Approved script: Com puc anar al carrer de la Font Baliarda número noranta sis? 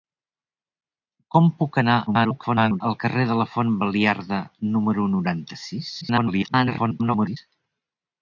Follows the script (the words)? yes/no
no